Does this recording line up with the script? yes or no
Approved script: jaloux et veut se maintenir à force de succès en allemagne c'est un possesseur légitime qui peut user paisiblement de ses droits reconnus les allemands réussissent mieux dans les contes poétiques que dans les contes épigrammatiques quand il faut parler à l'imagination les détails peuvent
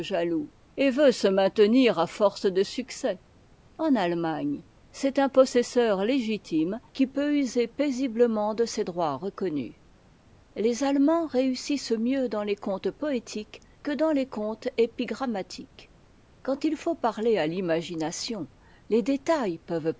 yes